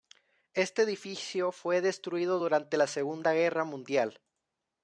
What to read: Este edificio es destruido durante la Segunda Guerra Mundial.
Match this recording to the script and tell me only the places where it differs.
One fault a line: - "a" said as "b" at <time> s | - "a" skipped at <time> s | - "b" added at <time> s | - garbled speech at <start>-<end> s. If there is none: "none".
- "es" said as "fue" at 1.5 s